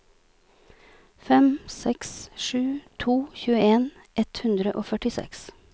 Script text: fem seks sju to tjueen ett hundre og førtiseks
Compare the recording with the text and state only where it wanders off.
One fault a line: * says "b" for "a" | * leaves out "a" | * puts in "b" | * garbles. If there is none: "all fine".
all fine